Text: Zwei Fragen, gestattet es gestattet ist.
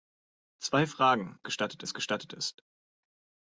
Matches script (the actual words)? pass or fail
pass